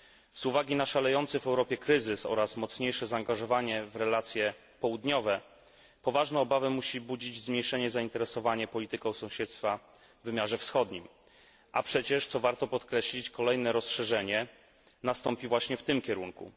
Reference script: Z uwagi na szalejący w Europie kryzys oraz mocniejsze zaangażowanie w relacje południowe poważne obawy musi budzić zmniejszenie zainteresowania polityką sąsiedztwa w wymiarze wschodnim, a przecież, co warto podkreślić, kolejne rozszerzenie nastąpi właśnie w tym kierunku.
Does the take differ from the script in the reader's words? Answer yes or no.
no